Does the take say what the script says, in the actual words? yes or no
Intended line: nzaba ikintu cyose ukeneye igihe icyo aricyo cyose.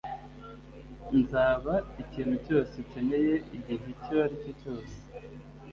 yes